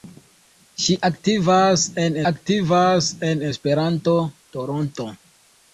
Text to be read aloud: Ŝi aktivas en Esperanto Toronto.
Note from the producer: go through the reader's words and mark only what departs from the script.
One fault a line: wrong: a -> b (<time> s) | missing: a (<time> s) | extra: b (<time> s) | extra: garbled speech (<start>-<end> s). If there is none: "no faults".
extra: aktivas en (2.3 s)